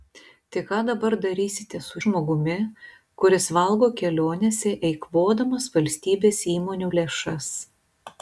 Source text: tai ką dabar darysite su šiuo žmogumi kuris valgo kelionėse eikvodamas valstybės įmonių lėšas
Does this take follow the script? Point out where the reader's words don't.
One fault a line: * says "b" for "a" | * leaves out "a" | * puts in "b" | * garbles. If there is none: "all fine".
* leaves out "šiuo"